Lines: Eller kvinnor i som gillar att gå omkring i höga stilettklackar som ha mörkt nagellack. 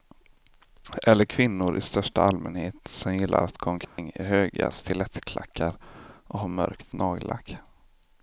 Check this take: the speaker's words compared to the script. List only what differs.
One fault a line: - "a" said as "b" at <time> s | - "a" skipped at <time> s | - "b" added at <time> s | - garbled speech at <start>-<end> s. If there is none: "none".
- "största allmänhet" added at 1.8 s
- "som" said as "och" at 6.3 s